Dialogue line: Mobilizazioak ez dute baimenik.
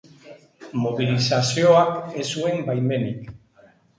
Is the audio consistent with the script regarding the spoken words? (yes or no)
no